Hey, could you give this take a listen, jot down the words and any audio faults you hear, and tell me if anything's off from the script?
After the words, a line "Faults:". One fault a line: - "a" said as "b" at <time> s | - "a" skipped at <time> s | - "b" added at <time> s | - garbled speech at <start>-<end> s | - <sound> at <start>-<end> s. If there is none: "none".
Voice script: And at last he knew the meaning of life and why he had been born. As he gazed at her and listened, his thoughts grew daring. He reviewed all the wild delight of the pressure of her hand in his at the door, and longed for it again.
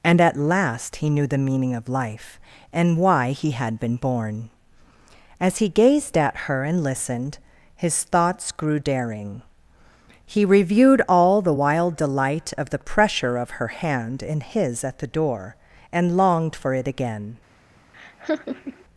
And at last he knew the meaning of life and why he had been born. As he gazed at her and listened, his thoughts grew daring. He reviewed all the wild delight of the pressure of her hand in his at the door, and longed for it again.
Faults:
- laugh at 17.9-18.8 s